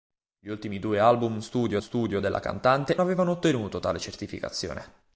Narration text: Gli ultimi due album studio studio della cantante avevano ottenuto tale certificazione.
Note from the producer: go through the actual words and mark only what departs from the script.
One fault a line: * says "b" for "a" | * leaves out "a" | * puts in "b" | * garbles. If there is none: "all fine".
all fine